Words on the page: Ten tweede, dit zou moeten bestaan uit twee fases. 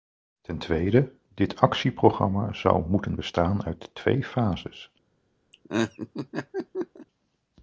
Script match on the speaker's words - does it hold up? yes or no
no